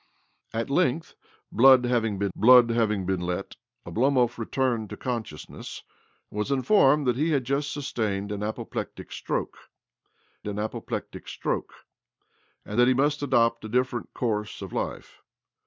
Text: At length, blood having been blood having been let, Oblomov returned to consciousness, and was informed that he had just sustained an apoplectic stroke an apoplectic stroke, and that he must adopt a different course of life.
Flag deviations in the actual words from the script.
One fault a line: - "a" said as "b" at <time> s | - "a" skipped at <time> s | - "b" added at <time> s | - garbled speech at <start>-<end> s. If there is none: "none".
none